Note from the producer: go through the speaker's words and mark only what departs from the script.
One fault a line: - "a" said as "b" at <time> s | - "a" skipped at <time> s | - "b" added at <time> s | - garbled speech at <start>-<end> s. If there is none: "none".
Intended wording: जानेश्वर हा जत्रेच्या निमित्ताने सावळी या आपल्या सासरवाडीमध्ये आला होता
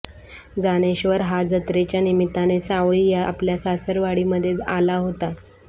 none